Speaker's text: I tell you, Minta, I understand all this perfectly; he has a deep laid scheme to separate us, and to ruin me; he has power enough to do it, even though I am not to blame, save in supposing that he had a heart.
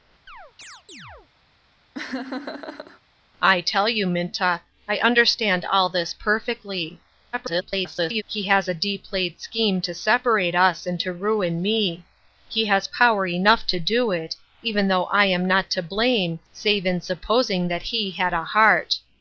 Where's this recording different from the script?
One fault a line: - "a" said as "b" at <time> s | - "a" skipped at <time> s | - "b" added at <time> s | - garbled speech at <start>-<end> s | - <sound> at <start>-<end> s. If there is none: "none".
- chirp at 0.3-1.3 s
- laugh at 1.9-3.0 s
- garbled speech at 7.3-8.2 s